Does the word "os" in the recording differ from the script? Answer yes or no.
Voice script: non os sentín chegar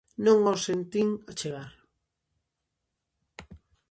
no